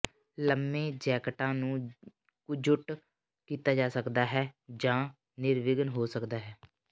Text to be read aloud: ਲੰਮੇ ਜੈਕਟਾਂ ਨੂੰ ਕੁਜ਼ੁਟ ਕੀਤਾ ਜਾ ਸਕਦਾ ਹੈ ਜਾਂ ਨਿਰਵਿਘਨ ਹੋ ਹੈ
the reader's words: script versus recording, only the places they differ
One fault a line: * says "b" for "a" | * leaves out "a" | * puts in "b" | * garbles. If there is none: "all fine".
* puts in "ਸਕਦਾ"